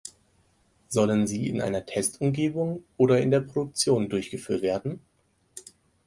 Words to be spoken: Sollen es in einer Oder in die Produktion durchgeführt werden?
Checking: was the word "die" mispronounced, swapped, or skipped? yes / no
yes